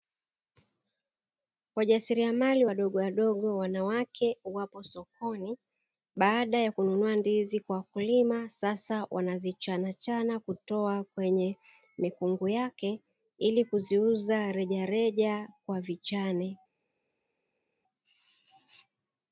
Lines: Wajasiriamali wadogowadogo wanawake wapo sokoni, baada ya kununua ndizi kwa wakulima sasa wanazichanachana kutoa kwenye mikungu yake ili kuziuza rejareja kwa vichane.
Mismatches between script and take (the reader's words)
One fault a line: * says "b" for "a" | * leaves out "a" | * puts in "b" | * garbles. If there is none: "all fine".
all fine